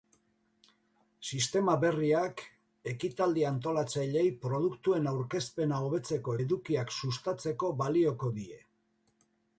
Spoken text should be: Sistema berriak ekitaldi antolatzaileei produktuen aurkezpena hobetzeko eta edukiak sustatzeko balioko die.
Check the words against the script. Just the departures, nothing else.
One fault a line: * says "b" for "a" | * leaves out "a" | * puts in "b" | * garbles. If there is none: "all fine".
* leaves out "eta"